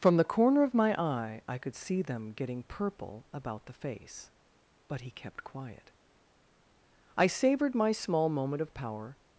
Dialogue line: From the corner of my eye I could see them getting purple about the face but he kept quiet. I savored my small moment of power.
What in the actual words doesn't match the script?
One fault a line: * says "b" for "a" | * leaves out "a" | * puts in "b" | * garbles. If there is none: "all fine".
all fine